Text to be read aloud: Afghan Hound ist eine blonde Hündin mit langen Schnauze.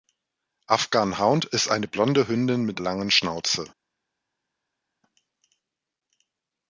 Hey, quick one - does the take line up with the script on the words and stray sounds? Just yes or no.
yes